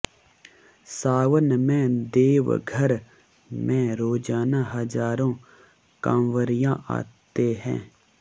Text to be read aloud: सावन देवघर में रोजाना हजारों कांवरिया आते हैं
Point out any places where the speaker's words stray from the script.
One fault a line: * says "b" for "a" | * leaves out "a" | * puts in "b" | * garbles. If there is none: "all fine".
* puts in "में"